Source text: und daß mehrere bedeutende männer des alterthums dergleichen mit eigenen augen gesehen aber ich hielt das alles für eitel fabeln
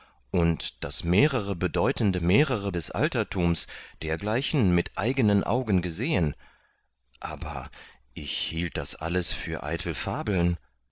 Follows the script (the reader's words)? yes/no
no